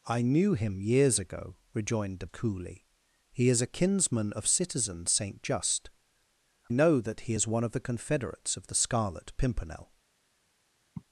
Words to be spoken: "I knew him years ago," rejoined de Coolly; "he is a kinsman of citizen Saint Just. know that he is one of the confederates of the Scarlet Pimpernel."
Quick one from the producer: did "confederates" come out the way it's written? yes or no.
yes